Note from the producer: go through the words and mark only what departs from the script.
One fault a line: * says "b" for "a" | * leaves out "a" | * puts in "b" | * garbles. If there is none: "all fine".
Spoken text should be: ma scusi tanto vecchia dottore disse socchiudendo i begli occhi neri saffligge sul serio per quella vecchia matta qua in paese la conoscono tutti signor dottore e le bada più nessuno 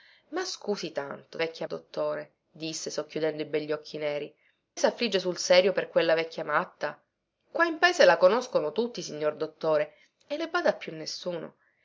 all fine